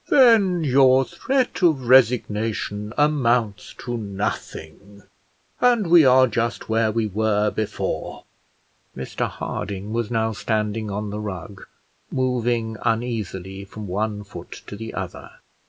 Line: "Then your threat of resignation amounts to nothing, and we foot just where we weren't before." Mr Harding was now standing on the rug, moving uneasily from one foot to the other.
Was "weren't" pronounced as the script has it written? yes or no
no